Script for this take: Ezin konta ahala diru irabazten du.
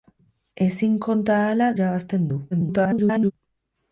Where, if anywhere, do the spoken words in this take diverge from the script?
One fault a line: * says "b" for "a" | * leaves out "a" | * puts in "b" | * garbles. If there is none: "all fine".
* leaves out "diru"
* garbles